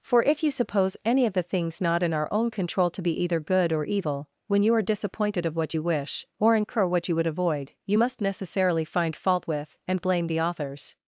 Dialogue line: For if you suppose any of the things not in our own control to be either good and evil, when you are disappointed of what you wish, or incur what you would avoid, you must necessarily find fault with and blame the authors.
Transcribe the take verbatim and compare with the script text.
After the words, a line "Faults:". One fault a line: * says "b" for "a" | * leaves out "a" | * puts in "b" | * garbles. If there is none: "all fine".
For if you suppose any of the things not in our own control to be either good or evil, when you are disappointed of what you wish, or incur what you would avoid, you must necessarily find fault with and blame the authors.
Faults:
* says "or" for "and"